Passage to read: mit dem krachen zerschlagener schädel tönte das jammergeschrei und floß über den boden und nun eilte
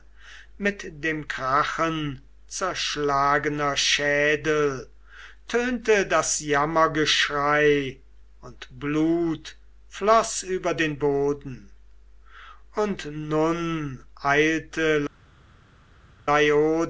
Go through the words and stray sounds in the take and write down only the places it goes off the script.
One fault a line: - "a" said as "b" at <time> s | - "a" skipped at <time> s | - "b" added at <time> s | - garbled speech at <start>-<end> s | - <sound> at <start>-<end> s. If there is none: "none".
- "blut" added at 8.8 s